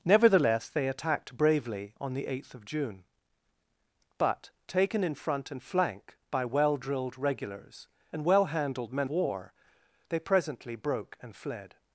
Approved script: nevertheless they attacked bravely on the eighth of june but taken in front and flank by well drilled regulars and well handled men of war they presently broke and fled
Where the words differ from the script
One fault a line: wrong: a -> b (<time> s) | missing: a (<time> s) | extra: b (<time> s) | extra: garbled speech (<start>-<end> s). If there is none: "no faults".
missing: of (9.1 s)